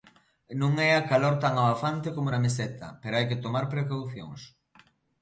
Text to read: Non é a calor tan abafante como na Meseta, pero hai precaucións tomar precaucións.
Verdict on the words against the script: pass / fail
fail